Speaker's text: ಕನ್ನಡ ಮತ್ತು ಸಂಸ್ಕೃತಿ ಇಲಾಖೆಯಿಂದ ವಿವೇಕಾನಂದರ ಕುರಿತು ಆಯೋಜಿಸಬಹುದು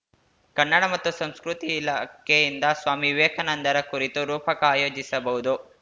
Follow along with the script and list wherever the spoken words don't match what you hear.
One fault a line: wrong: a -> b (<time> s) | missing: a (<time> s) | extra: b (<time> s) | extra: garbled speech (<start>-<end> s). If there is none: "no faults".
extra: ಸ್ವಾಮಿ (2.8 s)
extra: ರೂಪಕ (4.2 s)